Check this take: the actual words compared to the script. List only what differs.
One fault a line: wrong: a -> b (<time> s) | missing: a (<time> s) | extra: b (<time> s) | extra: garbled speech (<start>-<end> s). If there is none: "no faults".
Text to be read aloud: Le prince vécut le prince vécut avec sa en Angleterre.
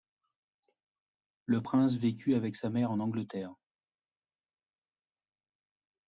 missing: le prince vécut (2.3 s)
extra: mère (2.7 s)